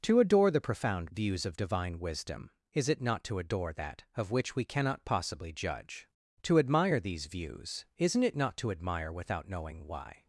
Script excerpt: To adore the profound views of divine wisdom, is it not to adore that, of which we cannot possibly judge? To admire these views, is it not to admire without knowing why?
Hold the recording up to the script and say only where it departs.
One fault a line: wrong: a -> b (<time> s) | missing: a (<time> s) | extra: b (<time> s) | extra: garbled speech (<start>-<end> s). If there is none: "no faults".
wrong: is -> isn't (8.0 s)